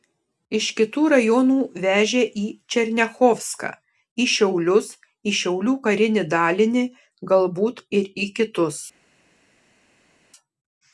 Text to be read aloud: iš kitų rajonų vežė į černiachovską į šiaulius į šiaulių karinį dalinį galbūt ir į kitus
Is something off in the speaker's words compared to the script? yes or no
no